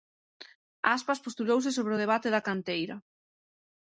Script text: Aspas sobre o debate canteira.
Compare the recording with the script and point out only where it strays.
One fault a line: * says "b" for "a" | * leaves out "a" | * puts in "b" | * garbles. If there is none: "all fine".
* puts in "postulouse"
* puts in "da"